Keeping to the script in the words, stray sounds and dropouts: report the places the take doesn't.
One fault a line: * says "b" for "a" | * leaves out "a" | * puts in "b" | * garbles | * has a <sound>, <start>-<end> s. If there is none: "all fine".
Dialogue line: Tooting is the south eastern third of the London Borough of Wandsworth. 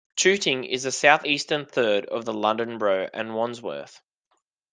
all fine